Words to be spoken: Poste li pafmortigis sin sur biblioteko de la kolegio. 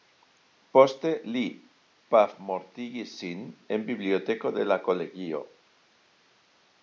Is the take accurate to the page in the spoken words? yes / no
no